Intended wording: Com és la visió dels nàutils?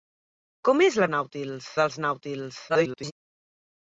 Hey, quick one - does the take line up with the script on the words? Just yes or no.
no